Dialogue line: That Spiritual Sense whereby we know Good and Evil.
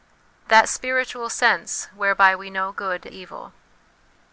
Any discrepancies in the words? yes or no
yes